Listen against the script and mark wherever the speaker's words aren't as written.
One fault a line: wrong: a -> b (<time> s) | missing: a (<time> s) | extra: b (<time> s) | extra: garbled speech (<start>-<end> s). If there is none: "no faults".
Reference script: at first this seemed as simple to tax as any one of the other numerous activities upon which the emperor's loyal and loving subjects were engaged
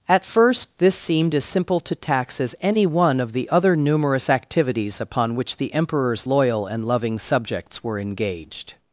no faults